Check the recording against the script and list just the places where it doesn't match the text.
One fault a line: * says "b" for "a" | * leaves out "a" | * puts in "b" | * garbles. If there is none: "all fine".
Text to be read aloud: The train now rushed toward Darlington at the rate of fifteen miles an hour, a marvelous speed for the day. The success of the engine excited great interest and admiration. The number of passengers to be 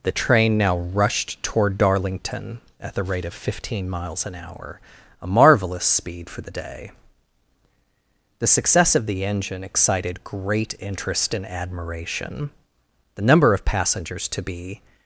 all fine